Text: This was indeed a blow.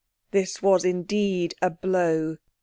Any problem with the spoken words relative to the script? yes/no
no